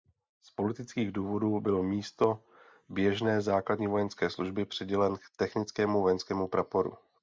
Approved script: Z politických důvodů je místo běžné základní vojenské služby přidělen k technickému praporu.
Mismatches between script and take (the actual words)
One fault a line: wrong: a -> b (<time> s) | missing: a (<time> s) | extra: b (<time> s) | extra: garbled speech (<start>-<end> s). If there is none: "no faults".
wrong: je -> byl (1.6 s)
extra: vojenskému (6.0 s)